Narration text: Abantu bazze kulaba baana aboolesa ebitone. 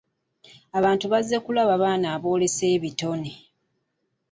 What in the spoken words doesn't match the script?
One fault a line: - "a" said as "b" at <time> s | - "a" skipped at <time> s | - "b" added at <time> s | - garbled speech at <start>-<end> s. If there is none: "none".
none